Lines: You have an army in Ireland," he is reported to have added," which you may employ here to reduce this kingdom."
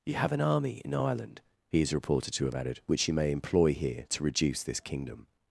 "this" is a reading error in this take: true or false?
false